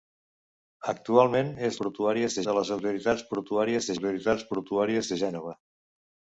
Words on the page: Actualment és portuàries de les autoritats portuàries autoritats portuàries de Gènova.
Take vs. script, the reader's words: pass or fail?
pass